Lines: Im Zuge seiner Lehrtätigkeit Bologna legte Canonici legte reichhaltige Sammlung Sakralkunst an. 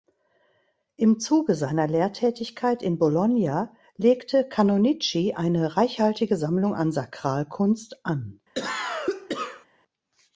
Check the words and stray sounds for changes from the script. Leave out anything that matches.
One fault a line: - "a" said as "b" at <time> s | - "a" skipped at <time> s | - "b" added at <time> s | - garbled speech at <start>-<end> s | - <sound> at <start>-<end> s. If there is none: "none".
- "in" added at 2.8 s
- "legte" said as "eine" at 5.3 s
- "an" added at 6.7 s
- cough at 8.5-9.7 s